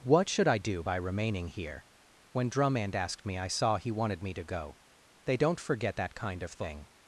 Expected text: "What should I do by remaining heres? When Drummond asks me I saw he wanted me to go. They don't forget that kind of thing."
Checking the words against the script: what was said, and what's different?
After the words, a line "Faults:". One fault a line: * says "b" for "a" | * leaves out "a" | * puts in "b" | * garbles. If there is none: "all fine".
"What should I do by remaining here? When Drummond asked me I saw he wanted me to go. They don't forget that kind of thing."
Faults:
* says "here" for "heres"
* says "asked" for "asks"